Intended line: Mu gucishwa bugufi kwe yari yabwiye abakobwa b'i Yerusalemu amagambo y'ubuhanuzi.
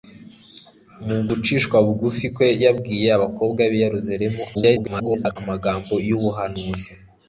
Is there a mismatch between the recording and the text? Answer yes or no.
yes